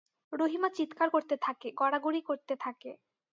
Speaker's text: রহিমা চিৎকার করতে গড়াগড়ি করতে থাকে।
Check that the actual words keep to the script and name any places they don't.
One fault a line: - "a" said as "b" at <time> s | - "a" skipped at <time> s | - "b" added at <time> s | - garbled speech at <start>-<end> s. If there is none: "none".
- "থাকে" added at 1.4 s